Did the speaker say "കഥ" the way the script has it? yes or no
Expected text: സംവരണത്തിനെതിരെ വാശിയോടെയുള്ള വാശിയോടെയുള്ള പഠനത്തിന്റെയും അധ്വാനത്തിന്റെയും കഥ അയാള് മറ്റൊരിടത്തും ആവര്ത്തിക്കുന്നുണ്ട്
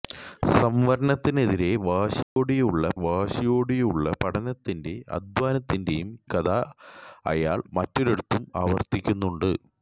yes